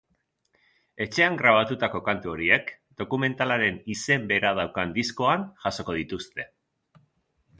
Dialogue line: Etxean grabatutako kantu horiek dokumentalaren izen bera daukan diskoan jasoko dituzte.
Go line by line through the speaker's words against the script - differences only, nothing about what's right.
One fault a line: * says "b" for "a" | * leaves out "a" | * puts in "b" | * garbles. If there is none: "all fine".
all fine